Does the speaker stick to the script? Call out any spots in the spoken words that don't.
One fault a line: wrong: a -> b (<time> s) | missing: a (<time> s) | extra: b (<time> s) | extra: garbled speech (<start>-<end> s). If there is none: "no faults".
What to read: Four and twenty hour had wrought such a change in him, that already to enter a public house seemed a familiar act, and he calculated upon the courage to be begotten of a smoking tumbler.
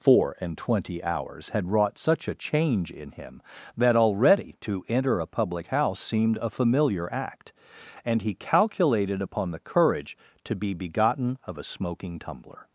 wrong: hour -> hours (1.0 s)